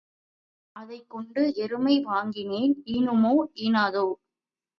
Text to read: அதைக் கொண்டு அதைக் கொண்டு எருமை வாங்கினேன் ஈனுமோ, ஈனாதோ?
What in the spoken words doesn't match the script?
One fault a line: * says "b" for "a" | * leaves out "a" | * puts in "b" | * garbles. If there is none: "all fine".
* leaves out "அதைக் கொண்டு"